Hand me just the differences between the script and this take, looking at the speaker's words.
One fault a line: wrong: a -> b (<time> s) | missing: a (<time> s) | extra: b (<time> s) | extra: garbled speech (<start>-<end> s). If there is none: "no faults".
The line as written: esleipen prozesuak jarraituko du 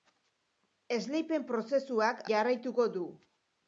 no faults